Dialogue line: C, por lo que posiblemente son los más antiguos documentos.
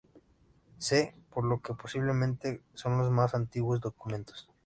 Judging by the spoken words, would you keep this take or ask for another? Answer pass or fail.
pass